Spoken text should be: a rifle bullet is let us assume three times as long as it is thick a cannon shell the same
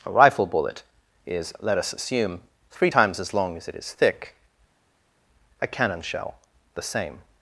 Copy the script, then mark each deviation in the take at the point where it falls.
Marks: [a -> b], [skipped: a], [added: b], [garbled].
a rifle bullet is let us assume three times as long as it is thick a cannon shell the same